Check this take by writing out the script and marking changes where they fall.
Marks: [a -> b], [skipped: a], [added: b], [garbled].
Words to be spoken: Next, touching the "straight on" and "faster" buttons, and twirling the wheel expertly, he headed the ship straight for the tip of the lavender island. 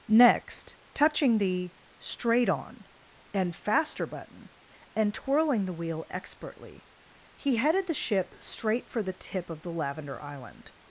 Next, touching the "straight on" and "faster" [buttons, -> button] and twirling the wheel expertly, he headed the ship straight for the tip of the lavender island.